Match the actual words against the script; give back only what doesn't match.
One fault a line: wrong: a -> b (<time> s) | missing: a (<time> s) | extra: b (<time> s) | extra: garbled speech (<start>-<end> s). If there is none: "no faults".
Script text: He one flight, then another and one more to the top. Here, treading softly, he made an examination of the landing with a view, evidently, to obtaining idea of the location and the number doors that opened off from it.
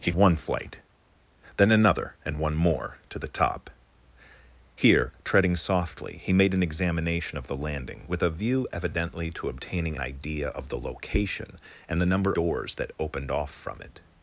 no faults